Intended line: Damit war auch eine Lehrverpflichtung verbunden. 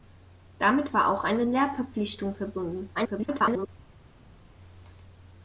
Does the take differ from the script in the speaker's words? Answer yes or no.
yes